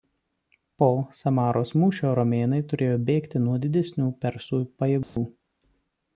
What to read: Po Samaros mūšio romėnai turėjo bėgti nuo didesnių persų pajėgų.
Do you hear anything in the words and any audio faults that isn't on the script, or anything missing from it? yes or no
yes